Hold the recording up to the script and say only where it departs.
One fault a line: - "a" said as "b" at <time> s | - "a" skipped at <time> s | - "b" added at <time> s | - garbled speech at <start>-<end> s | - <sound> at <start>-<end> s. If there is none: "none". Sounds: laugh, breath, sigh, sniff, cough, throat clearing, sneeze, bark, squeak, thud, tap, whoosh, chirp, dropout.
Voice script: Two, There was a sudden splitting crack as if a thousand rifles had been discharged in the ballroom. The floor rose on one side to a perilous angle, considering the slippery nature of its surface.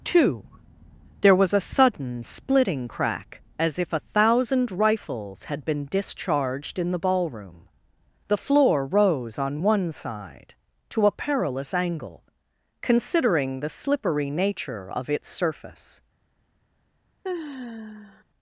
- sigh at 17.2-18.2 s